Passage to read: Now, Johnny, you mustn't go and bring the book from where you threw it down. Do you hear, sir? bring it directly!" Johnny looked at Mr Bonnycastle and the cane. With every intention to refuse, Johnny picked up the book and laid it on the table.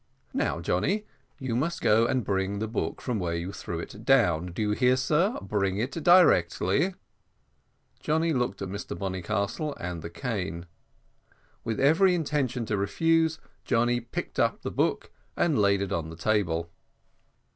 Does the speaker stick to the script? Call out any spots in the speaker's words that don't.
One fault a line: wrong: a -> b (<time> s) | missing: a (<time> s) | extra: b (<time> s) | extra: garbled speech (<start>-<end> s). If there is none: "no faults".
wrong: mustn't -> must (1.6 s)